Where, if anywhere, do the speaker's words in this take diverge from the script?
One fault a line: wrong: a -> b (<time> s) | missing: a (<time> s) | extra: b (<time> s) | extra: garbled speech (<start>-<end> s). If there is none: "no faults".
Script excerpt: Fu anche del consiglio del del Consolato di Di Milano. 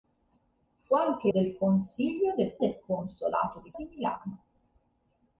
no faults